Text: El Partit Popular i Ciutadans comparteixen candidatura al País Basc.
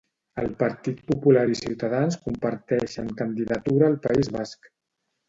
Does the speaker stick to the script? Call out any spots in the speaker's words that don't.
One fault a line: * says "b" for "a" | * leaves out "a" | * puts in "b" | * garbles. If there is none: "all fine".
all fine